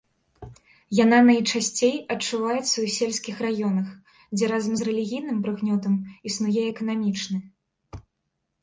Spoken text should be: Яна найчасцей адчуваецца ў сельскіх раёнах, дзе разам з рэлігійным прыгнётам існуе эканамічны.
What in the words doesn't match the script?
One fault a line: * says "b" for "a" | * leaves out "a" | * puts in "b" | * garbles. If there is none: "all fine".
all fine